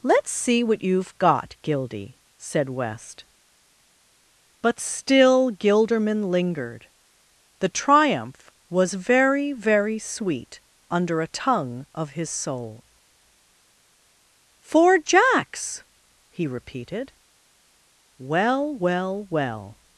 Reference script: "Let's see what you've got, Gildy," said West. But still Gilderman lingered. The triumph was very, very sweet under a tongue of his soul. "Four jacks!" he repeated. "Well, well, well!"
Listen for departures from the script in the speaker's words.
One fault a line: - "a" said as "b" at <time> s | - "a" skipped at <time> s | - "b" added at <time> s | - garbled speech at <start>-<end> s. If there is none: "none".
none